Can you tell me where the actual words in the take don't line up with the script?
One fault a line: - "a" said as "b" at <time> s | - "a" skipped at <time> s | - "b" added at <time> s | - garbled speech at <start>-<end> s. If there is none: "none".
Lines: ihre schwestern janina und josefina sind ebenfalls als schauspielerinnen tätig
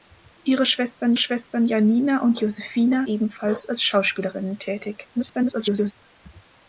- "schwestern" added at 1.2 s
- "sind" skipped at 3.1 s
- garbled speech at 5.1-5.9 s